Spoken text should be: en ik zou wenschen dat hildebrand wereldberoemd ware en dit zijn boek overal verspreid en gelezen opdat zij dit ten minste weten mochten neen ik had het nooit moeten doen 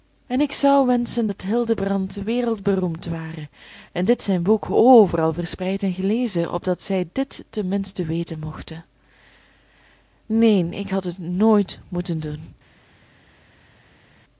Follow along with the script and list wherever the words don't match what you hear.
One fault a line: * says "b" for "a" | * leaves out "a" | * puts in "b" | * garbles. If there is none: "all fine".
all fine